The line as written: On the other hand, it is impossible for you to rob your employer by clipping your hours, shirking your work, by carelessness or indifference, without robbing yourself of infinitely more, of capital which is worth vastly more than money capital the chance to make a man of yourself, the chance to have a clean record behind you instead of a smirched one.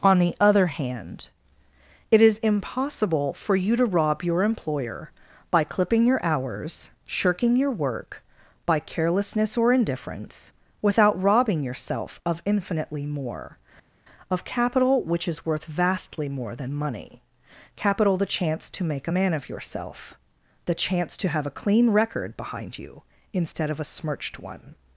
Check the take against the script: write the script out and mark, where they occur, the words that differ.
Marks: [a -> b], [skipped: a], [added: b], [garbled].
On the other hand, it is impossible for you to rob your employer by clipping your hours, shirking your work, by carelessness or indifference, without robbing yourself of infinitely more, of capital which is worth vastly more than money capital the chance to make a man of yourself, the chance to have a clean record behind you instead of a smirched one.